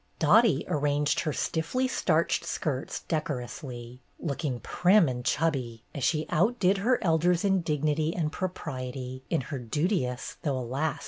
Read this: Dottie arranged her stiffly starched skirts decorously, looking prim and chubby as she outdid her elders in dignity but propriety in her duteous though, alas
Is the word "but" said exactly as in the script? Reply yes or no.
no